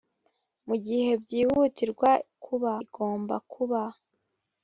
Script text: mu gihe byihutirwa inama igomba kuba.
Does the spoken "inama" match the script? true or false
false